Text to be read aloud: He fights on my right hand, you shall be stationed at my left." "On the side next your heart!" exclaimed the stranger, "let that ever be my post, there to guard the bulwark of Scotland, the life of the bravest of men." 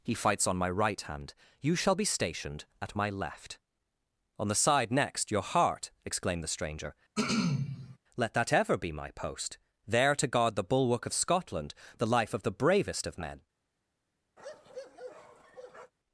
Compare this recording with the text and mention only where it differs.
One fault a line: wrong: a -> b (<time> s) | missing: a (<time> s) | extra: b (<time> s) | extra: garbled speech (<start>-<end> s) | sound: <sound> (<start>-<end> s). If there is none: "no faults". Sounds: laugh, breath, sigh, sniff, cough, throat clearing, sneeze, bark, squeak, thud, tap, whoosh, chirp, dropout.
sound: throat clearing (7.2-8.0 s)
sound: bark (14.4-15.9 s)